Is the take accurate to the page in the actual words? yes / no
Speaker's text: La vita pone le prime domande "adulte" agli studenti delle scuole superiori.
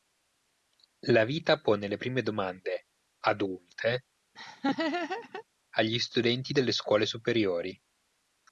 yes